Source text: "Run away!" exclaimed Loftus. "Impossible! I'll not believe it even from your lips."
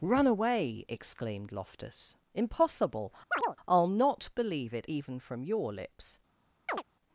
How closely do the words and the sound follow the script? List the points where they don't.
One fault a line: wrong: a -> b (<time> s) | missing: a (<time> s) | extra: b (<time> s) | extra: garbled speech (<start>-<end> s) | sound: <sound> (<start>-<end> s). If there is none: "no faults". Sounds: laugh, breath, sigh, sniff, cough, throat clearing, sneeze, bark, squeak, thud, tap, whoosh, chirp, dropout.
sound: chirp (3.3-3.6 s)
sound: chirp (6.7-6.8 s)